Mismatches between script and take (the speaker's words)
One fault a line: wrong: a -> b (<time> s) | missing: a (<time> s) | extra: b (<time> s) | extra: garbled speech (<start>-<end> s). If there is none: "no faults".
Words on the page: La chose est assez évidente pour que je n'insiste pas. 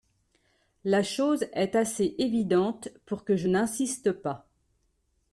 no faults